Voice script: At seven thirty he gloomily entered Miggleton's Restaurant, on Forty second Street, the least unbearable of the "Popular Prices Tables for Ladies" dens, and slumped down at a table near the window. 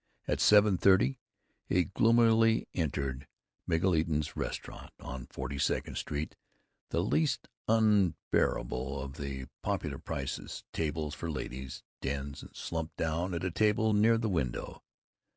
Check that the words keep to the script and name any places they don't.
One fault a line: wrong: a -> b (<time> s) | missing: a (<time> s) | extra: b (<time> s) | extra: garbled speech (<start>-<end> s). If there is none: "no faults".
no faults